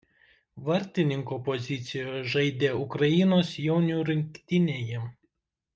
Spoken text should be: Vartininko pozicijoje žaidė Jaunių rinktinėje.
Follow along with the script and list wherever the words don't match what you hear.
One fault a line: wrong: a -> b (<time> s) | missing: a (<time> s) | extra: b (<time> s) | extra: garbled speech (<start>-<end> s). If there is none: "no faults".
extra: Ukrainos (2.9 s)